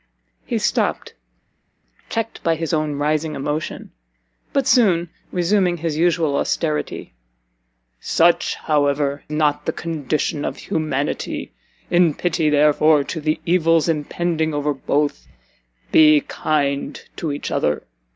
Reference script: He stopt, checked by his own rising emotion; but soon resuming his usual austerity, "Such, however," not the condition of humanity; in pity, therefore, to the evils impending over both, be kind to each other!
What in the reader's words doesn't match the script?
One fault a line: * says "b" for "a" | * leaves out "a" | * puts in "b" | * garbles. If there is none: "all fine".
all fine